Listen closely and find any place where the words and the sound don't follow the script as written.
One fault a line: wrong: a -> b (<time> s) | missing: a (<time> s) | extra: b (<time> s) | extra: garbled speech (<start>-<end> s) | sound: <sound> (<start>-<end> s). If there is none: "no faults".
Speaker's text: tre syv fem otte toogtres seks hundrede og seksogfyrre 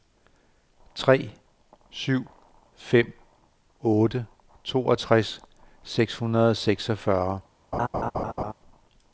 sound: laugh (7.7-8.5 s)